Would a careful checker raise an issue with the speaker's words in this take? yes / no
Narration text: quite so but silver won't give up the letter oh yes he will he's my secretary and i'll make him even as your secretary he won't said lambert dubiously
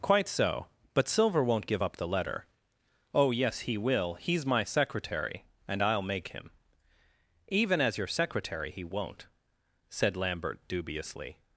no